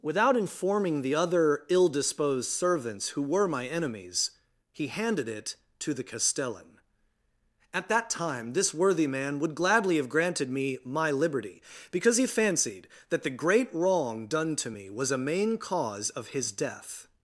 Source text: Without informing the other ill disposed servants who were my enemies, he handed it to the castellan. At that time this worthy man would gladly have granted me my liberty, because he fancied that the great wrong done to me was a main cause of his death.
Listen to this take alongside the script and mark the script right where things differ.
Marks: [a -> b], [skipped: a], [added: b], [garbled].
Without informing the other ill disposed servants who were my enemies, he handed it to the castellan. At that time this worthy man would gladly have granted me my liberty, because he fancied that the great wrong done to me was a main cause of his death.